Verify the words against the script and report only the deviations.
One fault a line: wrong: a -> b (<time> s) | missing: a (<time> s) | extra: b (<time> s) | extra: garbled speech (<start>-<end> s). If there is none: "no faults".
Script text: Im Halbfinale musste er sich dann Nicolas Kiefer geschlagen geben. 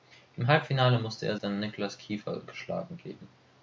missing: sich (1.4 s)